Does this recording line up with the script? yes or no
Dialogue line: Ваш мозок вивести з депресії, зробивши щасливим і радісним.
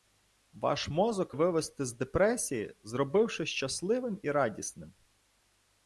yes